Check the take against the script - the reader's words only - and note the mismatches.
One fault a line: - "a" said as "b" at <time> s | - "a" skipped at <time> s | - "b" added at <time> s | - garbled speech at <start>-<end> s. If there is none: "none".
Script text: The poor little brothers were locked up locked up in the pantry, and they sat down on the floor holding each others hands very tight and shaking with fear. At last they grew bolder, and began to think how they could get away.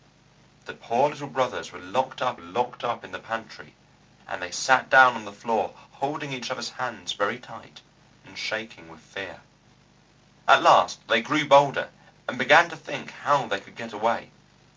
none